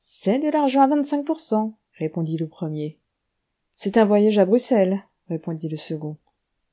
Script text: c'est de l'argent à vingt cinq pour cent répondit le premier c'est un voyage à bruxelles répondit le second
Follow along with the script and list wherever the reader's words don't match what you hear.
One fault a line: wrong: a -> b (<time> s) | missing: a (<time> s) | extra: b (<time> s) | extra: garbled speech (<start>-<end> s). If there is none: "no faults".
no faults